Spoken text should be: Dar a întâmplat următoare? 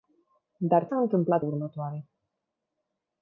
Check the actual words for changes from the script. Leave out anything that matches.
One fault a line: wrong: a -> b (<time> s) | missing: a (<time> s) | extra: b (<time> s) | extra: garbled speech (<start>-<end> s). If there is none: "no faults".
no faults